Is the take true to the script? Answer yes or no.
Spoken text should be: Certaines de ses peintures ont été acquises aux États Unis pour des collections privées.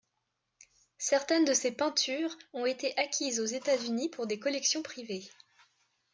yes